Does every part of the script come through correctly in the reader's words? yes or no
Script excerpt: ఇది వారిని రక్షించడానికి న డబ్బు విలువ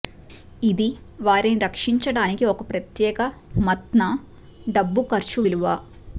no